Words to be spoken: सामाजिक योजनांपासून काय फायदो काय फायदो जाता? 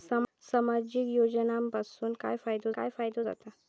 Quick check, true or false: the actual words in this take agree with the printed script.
true